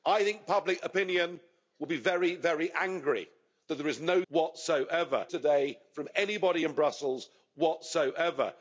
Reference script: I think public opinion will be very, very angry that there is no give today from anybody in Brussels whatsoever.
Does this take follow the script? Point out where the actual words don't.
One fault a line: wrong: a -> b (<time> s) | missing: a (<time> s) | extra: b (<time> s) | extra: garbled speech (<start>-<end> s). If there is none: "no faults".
wrong: give -> whatsoever (4.3 s)